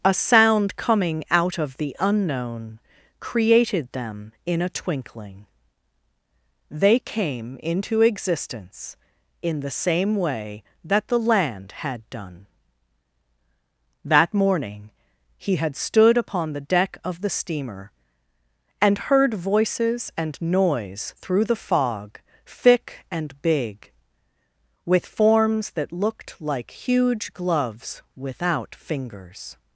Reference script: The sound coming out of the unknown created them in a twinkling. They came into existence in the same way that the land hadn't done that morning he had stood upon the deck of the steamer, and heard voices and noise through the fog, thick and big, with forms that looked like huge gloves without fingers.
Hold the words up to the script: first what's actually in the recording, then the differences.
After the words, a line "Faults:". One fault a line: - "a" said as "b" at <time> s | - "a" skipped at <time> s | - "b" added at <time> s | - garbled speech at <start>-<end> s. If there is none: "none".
A sound coming out of the unknown created them in a twinkling. They came into existence in the same way that the land had done that morning he had stood upon the deck of the steamer, and heard voices and noise through the fog, thick and big, with forms that looked like huge gloves without fingers.
Faults:
- "The" said as "A" at 0.0 s
- "hadn't" said as "had" at 11.8 s